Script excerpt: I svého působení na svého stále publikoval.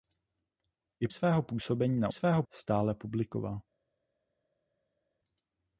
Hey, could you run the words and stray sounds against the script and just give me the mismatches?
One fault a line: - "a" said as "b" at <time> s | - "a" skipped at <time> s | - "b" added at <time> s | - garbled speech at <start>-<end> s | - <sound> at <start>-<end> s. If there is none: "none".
none